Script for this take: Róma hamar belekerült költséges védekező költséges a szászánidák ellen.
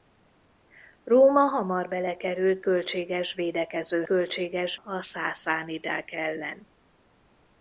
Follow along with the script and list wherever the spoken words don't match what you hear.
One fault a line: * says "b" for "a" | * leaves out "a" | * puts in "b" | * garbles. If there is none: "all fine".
all fine